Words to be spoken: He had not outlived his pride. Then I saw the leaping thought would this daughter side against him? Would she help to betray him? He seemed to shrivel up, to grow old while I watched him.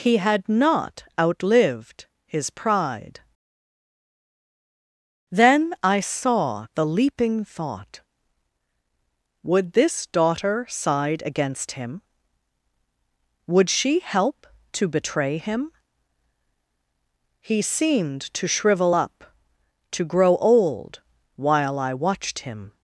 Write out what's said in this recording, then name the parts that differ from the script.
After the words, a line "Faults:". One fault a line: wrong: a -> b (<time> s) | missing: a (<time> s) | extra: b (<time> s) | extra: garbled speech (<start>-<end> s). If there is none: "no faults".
He had not outlived his pride. Then I saw the leaping thought would this daughter side against him? Would she help to betray him? He seemed to shrivel up, to grow old while I watched him.
Faults:
no faults